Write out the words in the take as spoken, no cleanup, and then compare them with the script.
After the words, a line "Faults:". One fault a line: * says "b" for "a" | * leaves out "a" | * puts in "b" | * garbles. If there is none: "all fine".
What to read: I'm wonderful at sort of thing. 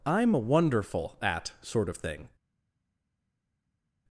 I'm wonderful at sort of thing.
Faults:
all fine